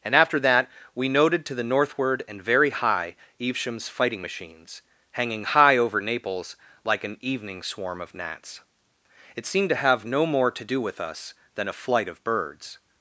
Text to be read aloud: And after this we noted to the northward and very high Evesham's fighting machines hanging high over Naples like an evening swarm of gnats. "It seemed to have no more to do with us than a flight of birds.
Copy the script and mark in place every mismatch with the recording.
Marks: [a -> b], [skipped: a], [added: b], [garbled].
And after [this -> that] we noted to the northward and very high Evesham's fighting machines hanging high over Naples like an evening swarm of gnats. "It seemed to have no more to do with us than a flight of birds.